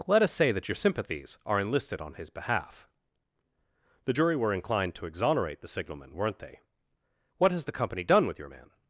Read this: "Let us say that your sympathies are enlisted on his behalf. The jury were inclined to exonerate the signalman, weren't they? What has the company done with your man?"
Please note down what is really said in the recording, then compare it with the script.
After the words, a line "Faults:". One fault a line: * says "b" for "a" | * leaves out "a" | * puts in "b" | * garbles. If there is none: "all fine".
"Let us say that your sympathies are enlisted on his behalf. The jury were inclined to exonerate the signalman, weren't they? What has the company done with your man?"
Faults:
all fine